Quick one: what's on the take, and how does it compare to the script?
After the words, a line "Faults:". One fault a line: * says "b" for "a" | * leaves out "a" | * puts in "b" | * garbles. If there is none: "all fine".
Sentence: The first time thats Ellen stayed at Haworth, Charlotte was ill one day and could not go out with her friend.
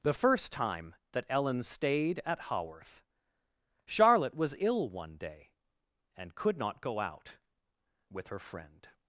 The first time that Ellen stayed at Haworth, Charlotte was ill one day and could not go out with her friend.
Faults:
* says "that" for "thats"